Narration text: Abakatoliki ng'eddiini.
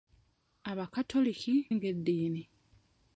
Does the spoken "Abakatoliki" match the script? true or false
true